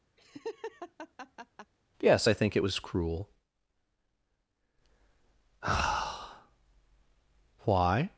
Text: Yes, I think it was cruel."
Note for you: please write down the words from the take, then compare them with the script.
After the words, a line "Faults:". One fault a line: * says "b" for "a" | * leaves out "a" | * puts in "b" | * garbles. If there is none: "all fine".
Yes, I think it was cruel." why
Faults:
* puts in "why"